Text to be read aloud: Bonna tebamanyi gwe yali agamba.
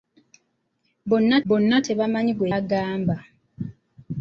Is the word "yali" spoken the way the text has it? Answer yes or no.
no